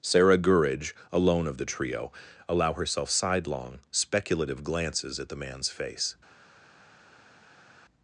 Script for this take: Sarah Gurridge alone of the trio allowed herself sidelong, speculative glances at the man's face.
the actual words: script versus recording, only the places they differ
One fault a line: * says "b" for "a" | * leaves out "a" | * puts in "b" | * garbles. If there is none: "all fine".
* says "allow" for "allowed"